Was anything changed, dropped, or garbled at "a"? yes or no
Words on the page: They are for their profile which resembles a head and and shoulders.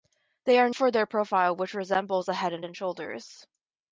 no